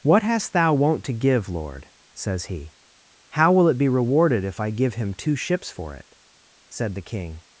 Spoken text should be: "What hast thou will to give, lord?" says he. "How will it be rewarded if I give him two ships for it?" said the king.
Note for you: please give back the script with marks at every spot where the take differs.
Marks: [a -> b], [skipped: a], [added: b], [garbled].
"What hast thou [will -> won't] to give, lord?" says he. "How will it be rewarded if I give him two ships for it?" said the king.